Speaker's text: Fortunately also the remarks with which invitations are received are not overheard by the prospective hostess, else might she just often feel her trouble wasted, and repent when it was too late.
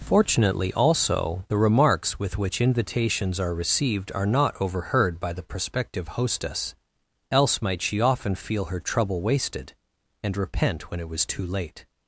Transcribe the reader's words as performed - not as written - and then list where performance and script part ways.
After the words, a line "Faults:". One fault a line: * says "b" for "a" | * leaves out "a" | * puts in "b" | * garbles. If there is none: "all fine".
Fortunately also the remarks with which invitations are received are not overheard by the prospective hostess, else might she often feel her trouble wasted, and repent when it was too late.
Faults:
* leaves out "just"